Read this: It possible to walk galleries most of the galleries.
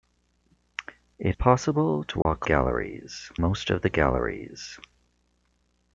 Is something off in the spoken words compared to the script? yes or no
no